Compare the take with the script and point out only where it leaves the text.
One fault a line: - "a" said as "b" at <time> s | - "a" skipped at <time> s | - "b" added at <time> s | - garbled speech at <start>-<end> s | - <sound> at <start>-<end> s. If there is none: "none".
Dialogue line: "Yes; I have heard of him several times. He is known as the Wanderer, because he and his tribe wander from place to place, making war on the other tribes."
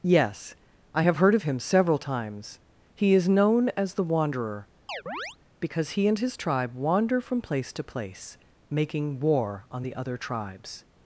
- chirp at 4.9-5.4 s